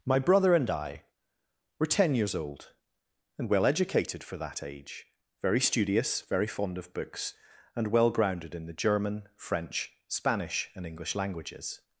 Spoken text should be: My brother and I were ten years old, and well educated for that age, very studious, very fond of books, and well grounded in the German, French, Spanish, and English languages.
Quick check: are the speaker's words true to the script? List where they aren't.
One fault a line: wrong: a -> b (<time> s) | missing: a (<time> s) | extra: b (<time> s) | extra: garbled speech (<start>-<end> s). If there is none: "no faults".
no faults